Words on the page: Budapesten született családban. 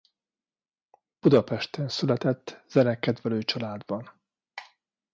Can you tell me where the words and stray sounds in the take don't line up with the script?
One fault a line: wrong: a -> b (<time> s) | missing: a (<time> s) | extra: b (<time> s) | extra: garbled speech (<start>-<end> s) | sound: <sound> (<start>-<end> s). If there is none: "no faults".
extra: zenekedvelő (2.7 s)